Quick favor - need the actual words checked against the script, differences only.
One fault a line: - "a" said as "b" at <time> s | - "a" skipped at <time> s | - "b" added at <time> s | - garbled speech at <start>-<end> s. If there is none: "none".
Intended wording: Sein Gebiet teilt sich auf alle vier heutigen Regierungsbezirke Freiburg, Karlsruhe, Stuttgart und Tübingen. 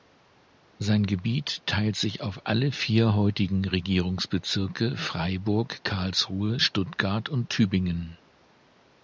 none